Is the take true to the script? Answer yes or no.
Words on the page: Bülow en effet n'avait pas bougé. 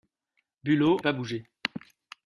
no